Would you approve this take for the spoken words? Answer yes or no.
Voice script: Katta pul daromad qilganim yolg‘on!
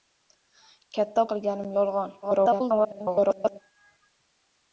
no